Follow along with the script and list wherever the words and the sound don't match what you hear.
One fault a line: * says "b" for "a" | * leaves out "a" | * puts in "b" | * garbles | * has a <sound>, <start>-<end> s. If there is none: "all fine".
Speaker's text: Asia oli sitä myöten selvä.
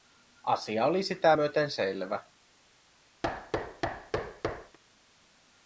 * has a thud, 3.2-4.8 s